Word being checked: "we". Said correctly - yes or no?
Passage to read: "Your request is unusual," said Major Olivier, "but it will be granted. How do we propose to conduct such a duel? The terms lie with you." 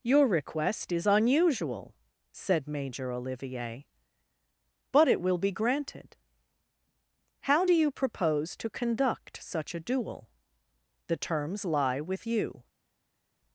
no